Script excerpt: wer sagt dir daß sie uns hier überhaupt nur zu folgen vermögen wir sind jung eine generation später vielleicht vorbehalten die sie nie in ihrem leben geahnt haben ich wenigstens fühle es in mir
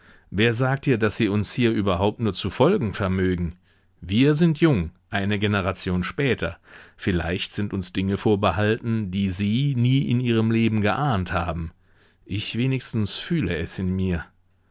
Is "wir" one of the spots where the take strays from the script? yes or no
no